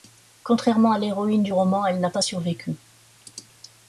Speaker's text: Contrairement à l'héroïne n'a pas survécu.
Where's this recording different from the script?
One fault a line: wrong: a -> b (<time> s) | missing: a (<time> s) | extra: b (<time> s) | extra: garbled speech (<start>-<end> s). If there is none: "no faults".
extra: du roman elle (1.4 s)